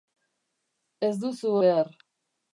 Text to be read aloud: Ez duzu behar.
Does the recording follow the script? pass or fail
pass